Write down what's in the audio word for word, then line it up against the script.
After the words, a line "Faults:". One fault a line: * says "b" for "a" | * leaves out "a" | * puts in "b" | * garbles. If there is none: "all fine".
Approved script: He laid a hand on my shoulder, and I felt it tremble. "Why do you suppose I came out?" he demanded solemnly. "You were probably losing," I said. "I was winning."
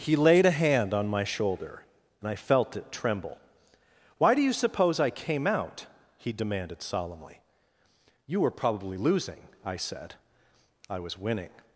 He laid a hand on my shoulder, and I felt it tremble. "Why do you suppose I came out?" he demanded solemnly. "You were probably losing," I said. "I was winning."
Faults:
all fine